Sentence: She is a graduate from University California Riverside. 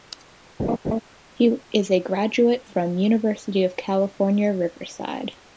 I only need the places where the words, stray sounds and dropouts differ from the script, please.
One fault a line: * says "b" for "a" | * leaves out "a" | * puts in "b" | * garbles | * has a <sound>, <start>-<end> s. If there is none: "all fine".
* has a laugh, 0.6-1.0 s
* says "He" for "She"
* puts in "of"